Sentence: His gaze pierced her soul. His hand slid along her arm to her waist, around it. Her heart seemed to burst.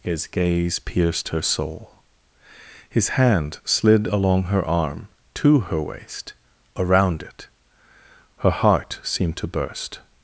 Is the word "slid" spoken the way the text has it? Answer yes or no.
yes